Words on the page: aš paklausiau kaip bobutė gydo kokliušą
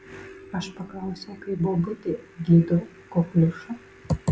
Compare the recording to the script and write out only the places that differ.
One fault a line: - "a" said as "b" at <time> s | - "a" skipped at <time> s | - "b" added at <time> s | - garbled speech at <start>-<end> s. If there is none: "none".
none